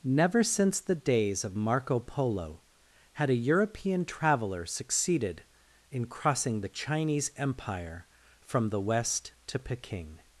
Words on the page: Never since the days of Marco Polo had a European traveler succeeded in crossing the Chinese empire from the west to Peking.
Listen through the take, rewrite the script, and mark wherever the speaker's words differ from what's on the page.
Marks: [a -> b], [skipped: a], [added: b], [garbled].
Never since the days of Marco Polo had a European traveler succeeded in crossing the Chinese empire from the west to Peking.